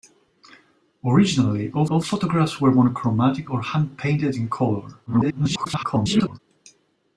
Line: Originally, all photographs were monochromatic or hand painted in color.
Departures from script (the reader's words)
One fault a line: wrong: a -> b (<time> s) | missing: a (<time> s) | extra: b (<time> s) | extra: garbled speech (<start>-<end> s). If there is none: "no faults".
extra: all (1.9 s)
extra: garbled speech (5.1-6.4 s)